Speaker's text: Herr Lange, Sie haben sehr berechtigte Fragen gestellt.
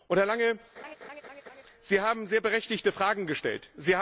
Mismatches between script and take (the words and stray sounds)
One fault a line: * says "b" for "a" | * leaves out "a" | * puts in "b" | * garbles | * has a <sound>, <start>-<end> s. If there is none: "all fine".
* has a laugh, 0.8-1.6 s